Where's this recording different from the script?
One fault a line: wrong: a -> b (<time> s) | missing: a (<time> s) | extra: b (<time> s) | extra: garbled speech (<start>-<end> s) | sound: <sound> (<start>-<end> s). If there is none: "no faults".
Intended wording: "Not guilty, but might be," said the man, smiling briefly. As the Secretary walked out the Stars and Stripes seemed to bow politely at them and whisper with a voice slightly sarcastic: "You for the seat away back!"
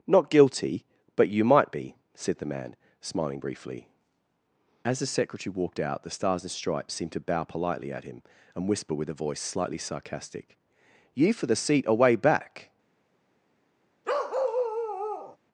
extra: you (1.3 s)
wrong: them -> him (8.0 s)
sound: bark (14.0-15.4 s)